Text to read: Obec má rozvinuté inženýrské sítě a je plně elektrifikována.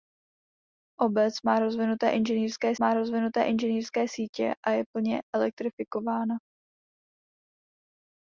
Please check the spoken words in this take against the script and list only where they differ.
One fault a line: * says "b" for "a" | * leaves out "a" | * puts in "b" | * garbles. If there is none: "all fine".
* puts in "má rozvinuté inženýrské"